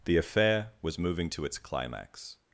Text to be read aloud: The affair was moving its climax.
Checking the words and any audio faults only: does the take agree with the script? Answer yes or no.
no